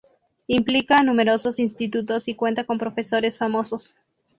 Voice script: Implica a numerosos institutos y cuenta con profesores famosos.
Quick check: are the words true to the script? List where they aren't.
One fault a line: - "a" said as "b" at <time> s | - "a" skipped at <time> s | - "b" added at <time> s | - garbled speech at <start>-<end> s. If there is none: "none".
none